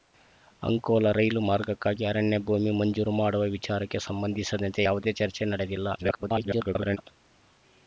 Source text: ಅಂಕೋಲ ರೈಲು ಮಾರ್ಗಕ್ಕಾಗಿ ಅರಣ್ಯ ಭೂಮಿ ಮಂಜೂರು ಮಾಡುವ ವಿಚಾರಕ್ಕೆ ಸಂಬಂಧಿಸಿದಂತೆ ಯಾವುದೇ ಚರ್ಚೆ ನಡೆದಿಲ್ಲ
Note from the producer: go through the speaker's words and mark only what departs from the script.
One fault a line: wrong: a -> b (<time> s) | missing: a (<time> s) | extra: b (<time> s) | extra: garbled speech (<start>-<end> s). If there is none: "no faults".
extra: garbled speech (6.0-7.0 s)